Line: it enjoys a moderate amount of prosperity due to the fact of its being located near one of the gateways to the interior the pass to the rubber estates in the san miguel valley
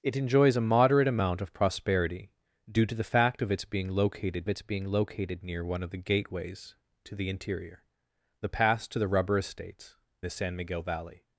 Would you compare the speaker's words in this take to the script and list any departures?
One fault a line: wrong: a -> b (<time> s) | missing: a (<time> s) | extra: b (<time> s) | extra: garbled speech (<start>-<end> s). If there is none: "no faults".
extra: its being located (4.5 s)
missing: in (10.0 s)